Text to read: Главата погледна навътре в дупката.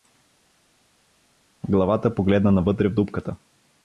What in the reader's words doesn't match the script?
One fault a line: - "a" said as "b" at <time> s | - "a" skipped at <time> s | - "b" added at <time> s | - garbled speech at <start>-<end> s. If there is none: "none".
none